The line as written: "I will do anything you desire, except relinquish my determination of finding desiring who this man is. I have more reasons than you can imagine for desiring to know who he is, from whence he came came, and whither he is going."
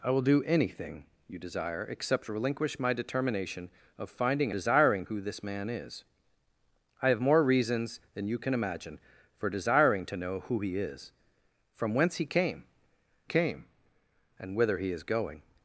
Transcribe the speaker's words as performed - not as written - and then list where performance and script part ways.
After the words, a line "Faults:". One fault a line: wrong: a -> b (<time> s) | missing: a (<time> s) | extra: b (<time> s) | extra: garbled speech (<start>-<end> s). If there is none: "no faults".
"I will do anything you desire, except relinquish my determination of finding desiring who this man is. I have more reasons than you can imagine for desiring to know who he is, from whence he came came, and whither he is going."
Faults:
no faults